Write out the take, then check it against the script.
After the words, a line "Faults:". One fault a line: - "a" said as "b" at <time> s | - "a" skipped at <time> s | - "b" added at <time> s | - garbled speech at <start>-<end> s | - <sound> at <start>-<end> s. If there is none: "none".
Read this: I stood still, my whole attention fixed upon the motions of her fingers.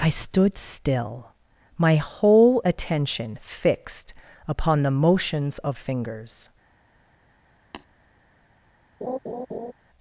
I stood still, my whole attention fixed upon the motions of fingers.
Faults:
- "her" skipped at 5.8 s
- tap at 7.7-7.9 s
- laugh at 9.0-9.7 s